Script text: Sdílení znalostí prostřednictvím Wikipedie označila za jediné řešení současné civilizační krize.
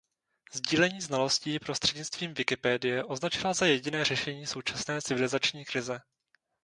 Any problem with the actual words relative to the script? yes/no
no